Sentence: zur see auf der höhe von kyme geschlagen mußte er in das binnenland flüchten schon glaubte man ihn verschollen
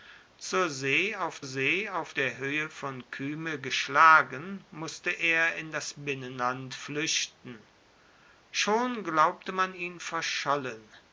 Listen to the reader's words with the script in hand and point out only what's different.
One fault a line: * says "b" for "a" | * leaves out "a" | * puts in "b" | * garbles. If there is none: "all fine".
* puts in "see auf"